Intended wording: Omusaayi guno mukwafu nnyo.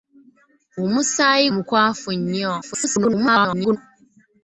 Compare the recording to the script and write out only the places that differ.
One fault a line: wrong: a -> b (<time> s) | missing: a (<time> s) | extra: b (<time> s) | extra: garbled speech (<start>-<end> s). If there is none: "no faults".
missing: guno (1.5 s)
extra: garbled speech (2.6-3.8 s)